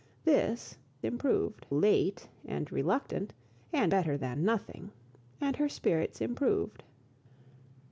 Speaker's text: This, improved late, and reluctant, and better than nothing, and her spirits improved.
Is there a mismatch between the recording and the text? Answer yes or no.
no